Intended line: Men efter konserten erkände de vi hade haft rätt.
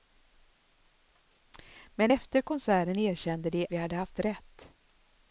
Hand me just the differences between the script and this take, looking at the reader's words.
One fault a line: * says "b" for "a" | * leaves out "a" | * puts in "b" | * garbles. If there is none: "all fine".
all fine